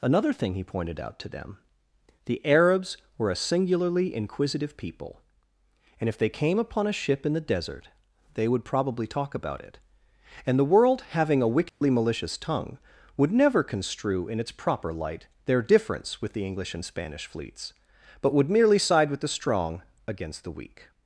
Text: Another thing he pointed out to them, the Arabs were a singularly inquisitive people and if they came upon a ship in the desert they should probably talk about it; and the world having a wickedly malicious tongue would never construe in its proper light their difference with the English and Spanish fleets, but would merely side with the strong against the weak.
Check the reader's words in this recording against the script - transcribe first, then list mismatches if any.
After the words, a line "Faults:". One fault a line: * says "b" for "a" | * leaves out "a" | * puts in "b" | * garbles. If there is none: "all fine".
Another thing he pointed out to them, the Arabs were a singularly inquisitive people and if they came upon a ship in the desert they would probably talk about it; and the world having a wickedly malicious tongue would never construe in its proper light their difference with the English and Spanish fleets, but would merely side with the strong against the weak.
Faults:
* says "would" for "should"